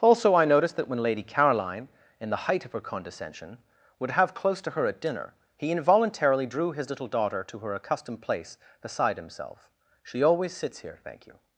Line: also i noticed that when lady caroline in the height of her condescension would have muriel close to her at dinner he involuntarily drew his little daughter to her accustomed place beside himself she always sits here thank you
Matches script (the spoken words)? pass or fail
fail